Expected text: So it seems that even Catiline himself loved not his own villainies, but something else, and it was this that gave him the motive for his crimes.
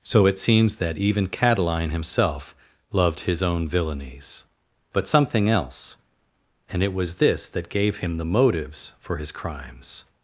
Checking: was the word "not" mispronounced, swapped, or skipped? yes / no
yes